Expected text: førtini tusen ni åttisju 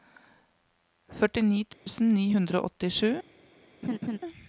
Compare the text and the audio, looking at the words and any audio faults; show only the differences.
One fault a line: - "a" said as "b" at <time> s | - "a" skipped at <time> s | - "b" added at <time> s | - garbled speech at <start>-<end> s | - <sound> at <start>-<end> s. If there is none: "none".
- dropout at 1.7-1.9 s
- "hundre og" added at 2.3 s
- laugh at 3.8-4.2 s